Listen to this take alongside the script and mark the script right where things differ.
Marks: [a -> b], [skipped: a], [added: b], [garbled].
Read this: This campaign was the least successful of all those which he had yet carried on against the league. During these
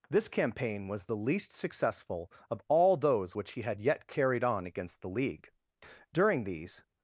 This campaign was the least successful of all those which he had yet carried on against the league. During these